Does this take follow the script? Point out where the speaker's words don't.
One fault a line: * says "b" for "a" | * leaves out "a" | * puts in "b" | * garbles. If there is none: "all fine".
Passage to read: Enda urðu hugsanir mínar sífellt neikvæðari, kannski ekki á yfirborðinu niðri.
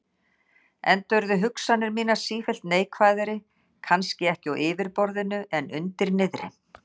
* puts in "en undir"